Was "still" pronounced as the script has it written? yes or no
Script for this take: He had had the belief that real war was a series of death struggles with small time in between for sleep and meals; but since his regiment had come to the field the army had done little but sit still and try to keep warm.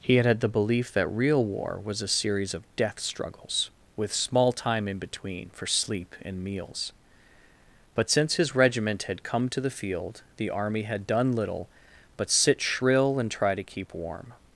no